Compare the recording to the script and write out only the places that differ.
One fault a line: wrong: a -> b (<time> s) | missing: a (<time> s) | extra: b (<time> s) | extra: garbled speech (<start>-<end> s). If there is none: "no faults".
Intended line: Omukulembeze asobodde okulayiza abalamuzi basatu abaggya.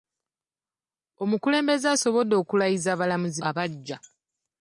missing: basatu (3.4 s)